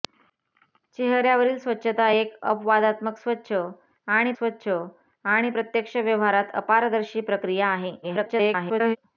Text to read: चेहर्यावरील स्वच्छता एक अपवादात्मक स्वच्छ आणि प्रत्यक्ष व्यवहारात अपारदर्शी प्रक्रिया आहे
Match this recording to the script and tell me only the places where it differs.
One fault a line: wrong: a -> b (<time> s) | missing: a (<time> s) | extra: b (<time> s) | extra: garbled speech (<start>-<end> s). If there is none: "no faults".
extra: स्वच्छ आणि (4.3 s)
extra: garbled speech (8.0-9.0 s)